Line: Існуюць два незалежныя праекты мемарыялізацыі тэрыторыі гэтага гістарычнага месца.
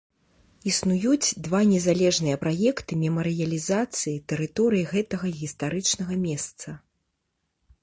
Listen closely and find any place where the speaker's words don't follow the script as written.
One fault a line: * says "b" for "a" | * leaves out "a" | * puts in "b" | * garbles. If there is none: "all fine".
all fine